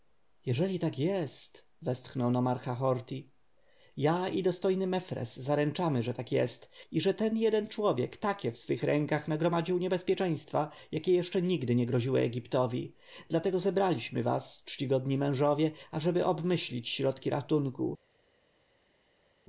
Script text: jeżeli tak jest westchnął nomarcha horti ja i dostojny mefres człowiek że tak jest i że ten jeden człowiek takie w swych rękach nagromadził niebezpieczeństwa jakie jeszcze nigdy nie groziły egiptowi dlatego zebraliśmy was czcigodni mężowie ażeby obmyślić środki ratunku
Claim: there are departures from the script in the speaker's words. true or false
true